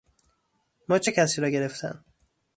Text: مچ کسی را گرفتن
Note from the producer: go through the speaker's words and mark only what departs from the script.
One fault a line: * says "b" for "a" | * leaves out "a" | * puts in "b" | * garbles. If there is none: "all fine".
all fine